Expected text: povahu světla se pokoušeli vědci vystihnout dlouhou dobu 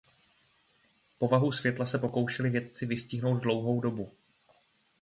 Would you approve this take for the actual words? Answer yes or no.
yes